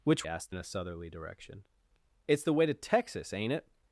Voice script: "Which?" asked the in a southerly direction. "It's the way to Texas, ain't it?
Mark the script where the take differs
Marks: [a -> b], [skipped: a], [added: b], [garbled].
"Which?" asked the in a southerly direction. "It's the way to Texas, ain't it?